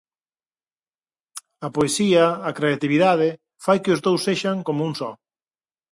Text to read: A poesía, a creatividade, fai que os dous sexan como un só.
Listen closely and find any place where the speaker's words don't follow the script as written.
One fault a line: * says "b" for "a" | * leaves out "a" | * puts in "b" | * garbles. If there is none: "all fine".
all fine